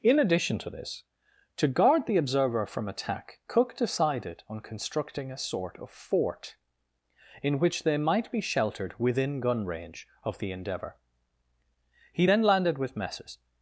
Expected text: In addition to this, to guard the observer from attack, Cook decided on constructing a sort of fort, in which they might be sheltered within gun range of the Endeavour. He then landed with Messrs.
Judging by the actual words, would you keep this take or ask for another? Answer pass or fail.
pass